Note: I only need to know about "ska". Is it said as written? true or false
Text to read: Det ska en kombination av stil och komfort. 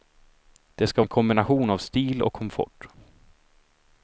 true